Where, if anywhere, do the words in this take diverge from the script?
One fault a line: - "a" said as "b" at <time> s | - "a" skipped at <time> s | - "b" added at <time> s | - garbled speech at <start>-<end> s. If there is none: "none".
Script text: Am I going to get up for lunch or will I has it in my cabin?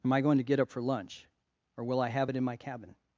- "has" said as "have" at 2.1 s